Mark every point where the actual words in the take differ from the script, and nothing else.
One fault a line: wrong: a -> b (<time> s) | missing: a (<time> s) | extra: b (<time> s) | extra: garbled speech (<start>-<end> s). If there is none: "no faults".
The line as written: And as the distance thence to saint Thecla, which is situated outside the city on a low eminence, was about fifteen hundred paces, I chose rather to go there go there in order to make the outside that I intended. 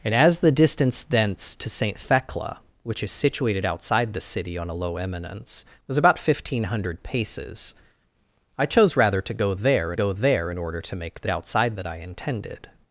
no faults